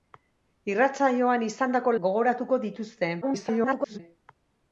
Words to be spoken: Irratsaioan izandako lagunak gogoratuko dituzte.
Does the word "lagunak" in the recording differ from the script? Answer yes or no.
yes